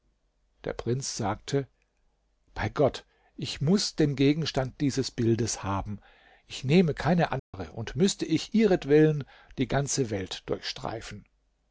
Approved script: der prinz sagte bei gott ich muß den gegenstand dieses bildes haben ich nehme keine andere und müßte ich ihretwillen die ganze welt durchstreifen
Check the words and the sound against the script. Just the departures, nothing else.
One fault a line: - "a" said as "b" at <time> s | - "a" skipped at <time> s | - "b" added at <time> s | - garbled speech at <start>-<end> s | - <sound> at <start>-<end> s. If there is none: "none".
- dropout at 7.4-7.5 s